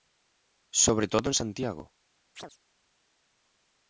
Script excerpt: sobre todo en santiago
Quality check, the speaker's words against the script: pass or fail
pass